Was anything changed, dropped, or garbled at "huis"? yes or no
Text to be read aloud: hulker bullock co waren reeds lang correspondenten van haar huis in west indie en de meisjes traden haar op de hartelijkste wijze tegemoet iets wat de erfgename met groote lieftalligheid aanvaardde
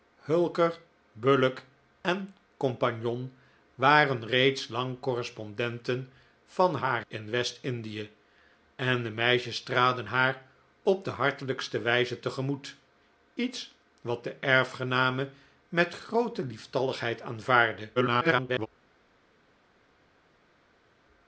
yes